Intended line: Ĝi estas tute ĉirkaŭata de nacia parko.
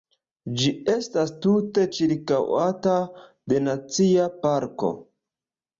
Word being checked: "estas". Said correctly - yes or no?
yes